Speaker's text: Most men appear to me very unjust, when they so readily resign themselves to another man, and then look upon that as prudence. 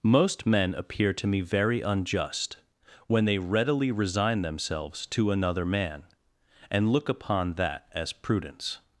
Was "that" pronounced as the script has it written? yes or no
yes